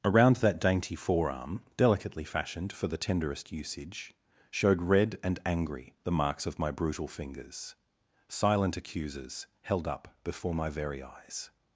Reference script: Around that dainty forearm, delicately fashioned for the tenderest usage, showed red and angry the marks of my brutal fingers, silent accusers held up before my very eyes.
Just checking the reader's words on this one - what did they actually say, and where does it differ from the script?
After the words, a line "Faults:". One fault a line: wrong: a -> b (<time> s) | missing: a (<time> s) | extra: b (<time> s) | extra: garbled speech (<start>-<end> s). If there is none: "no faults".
Around that dainty forearm, delicately fashioned for the tenderest usage, showed red and angry the marks of my brutal fingers, silent accusers held up before my very eyes.
Faults:
no faults